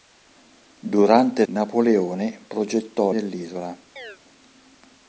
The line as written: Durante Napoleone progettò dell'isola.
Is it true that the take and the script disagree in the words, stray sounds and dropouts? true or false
true